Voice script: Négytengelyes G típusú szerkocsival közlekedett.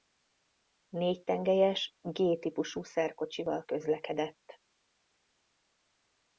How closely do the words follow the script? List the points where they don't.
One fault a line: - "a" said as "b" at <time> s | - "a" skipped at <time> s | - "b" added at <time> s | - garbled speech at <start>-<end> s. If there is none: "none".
none